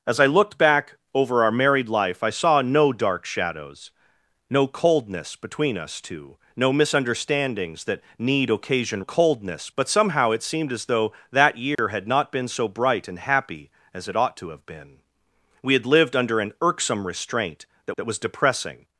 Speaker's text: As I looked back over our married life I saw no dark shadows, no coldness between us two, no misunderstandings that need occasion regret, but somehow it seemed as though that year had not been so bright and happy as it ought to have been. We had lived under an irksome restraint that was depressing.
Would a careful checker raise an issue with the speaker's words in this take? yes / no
yes